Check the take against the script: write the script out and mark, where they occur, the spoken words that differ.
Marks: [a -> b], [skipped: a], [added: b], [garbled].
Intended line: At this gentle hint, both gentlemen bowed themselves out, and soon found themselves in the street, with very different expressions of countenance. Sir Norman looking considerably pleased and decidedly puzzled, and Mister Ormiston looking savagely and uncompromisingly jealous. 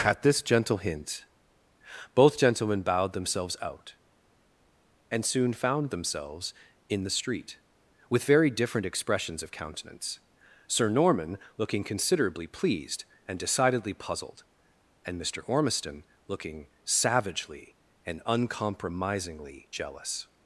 At this gentle hint, both gentlemen bowed themselves out, and soon found themselves in the street, with very different expressions of countenance. Sir Norman looking considerably pleased and decidedly puzzled, and Mister Ormiston looking savagely and uncompromisingly jealous.